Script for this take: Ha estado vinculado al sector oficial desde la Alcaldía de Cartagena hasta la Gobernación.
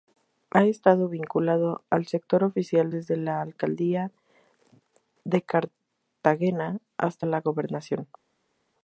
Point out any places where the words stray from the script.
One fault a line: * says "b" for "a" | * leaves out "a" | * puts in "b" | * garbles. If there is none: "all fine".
all fine